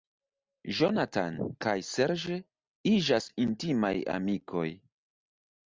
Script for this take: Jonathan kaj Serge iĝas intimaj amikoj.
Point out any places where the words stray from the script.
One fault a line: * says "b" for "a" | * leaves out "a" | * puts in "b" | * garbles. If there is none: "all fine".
all fine